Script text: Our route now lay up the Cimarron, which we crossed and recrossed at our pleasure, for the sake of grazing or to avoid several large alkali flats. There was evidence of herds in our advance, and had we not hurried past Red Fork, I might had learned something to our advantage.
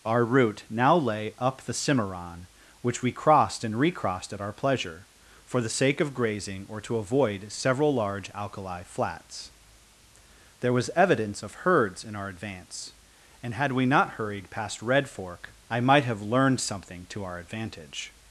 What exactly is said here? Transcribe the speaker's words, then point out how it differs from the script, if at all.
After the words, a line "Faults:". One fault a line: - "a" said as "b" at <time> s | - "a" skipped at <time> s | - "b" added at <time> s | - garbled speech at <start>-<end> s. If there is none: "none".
Our route now lay up the Cimarron, which we crossed and recrossed at our pleasure, for the sake of grazing or to avoid several large alkali flats. There was evidence of herds in our advance, and had we not hurried past Red Fork, I might have learned something to our advantage.
Faults:
- "had" said as "have" at 16.1 s